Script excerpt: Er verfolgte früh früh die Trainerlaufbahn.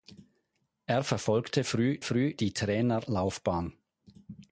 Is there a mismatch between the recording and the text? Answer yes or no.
no